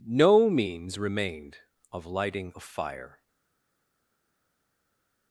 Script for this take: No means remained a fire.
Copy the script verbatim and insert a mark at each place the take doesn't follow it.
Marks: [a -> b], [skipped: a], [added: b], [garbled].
No means remained [added: of lighting] a fire.